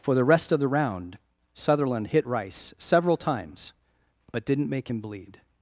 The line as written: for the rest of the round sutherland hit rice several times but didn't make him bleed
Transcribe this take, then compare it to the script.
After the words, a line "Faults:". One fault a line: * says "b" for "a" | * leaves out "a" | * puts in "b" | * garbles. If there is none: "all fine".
for the rest of the round sutherland hit rice several times but didn't make him bleed
Faults:
all fine